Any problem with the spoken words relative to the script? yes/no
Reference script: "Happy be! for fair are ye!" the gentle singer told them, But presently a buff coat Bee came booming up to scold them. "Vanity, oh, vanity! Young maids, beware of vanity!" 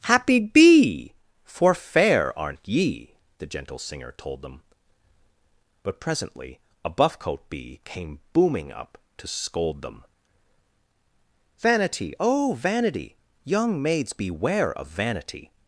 yes